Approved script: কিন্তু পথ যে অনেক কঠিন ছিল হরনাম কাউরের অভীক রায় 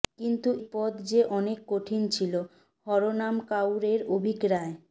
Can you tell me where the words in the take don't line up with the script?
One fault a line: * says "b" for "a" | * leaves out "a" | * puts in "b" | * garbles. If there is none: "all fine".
all fine